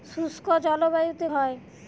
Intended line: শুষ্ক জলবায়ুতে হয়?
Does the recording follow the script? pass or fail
pass